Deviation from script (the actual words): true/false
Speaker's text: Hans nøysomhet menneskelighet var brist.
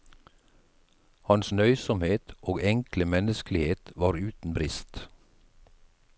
true